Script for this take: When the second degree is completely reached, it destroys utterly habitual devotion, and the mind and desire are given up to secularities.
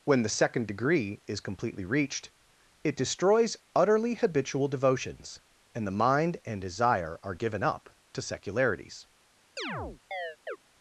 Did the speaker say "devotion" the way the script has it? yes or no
no